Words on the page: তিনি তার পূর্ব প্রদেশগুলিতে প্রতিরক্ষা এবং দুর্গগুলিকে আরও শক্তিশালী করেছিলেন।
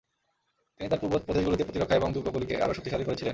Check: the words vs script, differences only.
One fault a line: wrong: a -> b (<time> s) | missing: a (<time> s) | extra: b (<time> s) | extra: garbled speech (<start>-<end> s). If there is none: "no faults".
no faults